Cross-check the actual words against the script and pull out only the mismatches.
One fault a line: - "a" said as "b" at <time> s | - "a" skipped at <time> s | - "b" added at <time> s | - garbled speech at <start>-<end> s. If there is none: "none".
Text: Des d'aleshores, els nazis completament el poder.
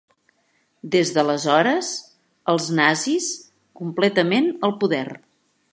none